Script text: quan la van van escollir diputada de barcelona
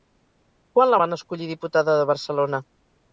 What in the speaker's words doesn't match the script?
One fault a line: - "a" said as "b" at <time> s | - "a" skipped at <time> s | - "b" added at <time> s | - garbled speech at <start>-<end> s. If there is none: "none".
- "van" skipped at 1.2 s